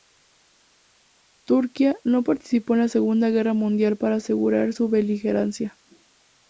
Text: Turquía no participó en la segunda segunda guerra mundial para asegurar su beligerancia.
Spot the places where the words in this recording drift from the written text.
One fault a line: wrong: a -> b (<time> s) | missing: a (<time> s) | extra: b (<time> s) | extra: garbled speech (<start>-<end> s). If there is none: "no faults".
missing: segunda (3.3 s)